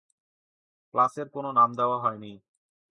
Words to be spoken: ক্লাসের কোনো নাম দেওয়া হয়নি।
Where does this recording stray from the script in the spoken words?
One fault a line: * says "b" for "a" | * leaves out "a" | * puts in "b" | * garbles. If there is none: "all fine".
all fine